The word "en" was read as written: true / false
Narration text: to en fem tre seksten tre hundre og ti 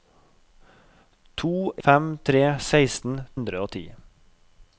false